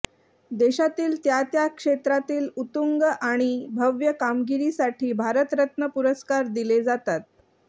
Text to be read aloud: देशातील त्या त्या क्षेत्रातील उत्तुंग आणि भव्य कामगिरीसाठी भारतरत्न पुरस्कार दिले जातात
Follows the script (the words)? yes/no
yes